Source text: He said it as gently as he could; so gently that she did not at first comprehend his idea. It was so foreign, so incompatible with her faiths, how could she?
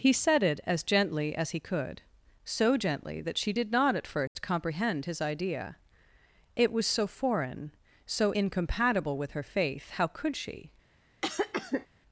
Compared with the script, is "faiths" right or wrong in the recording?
wrong